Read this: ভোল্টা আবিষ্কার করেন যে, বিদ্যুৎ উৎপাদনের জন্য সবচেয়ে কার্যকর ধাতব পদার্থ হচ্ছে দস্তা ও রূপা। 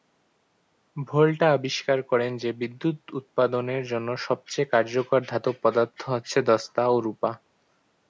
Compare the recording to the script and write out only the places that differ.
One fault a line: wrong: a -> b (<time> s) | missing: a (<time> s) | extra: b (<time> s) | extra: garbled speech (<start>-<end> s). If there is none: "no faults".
no faults